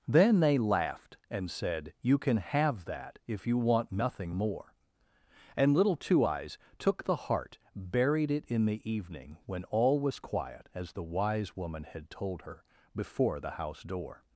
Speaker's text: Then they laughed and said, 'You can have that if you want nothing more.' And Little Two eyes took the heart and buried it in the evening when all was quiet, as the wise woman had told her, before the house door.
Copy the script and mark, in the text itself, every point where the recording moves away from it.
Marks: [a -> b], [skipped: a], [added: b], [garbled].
Then they laughed and said, 'You can have that if you want nothing more.' And Little Two eyes took the heart [skipped: and] buried it in the evening when all was quiet, as the wise woman had told her, before the house door.